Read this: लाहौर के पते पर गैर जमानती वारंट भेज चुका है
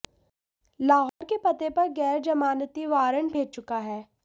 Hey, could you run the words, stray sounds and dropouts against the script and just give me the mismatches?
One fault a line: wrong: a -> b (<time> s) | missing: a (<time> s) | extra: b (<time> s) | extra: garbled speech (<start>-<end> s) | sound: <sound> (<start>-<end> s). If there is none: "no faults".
sound: dropout (1.1-1.2 s)